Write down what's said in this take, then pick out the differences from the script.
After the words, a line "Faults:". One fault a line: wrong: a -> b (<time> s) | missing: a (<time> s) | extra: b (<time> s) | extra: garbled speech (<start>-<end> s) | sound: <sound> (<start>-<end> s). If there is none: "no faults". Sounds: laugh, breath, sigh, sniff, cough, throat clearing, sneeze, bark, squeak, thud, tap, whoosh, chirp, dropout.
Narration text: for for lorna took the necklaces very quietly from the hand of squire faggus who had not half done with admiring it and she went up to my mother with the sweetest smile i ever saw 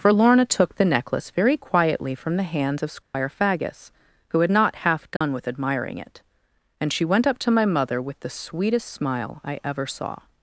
for lorna took the necklace very quietly from the hands of squire faggus who had not half done with admiring it and she went up to my mother with the sweetest smile i ever saw
Faults:
missing: for (0.1 s)
wrong: necklaces -> necklace (0.8 s)
wrong: hand -> hands (2.5 s)
sound: dropout (3.0-3.1 s)
sound: dropout (5.2-5.2 s)